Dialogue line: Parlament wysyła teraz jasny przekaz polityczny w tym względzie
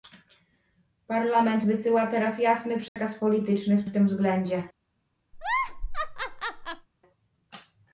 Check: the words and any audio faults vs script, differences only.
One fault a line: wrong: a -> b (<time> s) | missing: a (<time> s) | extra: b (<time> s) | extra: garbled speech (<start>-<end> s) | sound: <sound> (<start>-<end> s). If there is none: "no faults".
sound: dropout (2.9-3.0 s)
extra: w (3.8 s)
sound: laugh (5.3-6.9 s)